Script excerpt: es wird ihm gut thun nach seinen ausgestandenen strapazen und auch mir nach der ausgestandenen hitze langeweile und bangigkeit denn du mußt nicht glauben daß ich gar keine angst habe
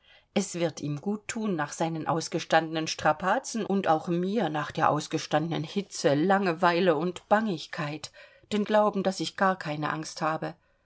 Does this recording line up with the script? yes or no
no